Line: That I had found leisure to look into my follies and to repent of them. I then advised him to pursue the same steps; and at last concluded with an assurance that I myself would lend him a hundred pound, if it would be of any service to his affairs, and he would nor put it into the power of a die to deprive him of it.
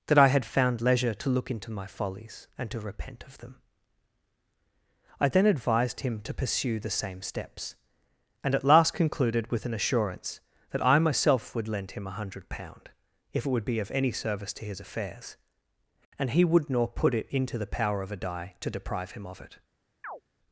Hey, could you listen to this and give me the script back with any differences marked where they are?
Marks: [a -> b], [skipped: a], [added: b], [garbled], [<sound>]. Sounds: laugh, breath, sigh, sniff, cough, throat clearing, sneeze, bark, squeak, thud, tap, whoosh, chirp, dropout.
That I had found leisure to look into my follies and to repent of them. I then advised him to pursue the same steps; and at last concluded with an assurance that I myself would lend him a hundred pound, if it would be of any service to his affairs, and he would nor put it into the power of a die to deprive him of it. [chirp]